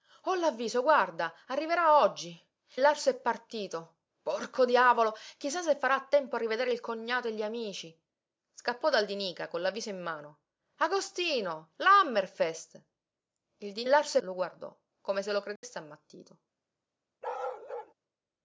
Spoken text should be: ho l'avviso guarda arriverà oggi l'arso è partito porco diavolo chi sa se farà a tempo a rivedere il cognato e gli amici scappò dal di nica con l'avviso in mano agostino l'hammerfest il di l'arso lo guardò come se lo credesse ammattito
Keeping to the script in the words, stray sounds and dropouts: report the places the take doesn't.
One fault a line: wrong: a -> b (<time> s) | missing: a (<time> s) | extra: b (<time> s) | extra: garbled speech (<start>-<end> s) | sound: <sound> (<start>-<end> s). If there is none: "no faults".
sound: dropout (15.6-15.6 s)
sound: bark (17.2-17.9 s)